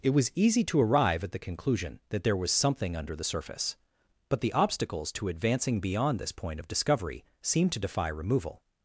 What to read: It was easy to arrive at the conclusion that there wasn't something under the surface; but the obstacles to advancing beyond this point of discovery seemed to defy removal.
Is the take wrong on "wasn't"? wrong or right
wrong